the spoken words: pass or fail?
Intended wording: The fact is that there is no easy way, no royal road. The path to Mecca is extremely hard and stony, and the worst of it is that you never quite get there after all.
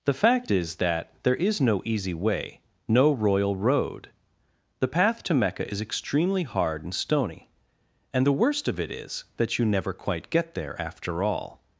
pass